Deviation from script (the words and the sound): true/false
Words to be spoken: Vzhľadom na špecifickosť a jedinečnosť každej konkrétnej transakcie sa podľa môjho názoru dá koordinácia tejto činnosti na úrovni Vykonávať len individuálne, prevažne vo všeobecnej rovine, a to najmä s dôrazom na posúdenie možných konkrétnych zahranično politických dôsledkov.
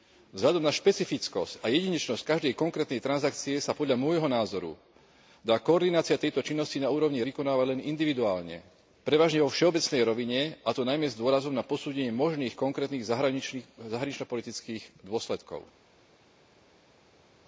false